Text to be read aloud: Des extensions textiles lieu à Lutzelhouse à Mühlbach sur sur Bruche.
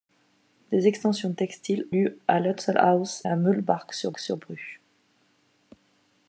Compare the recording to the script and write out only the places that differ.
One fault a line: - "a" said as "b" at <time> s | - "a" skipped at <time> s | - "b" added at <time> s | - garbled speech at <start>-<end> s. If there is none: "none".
none